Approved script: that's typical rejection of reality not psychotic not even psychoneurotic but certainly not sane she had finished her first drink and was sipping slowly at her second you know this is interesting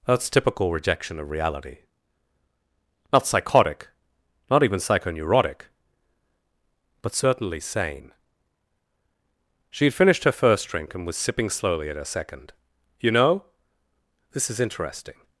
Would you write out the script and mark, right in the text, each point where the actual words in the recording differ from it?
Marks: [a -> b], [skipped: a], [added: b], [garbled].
that's typical rejection of reality not psychotic not even psychoneurotic but certainly [skipped: not] sane she had finished her first drink and was sipping slowly at her second you know this is interesting